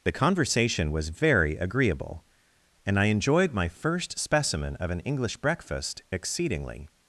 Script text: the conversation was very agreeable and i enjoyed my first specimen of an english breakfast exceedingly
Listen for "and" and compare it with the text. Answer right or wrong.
right